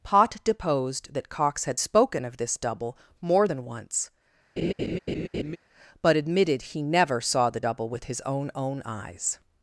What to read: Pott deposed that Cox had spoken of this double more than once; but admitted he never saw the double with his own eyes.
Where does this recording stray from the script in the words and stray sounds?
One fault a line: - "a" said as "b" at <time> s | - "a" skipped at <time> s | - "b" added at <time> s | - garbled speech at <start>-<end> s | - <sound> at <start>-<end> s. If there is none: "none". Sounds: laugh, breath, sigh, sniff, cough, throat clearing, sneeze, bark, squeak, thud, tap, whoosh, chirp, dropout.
- laugh at 4.6-5.6 s
- "own" added at 8.5 s